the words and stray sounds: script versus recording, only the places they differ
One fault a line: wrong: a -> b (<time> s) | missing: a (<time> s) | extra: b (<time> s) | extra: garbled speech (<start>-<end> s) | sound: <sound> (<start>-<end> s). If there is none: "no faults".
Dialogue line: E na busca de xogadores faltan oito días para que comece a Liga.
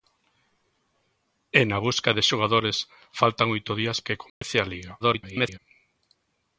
missing: para (4.0 s)
sound: dropout (4.3-4.4 s)
extra: garbled speech (5.0-5.6 s)